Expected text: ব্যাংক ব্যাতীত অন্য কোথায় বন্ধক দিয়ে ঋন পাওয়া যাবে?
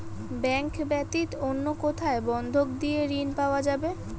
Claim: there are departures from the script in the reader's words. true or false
false